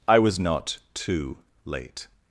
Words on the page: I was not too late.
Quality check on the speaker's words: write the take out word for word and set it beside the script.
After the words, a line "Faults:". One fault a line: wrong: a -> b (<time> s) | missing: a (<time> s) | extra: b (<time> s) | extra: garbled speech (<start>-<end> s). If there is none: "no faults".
I was not too late.
Faults:
no faults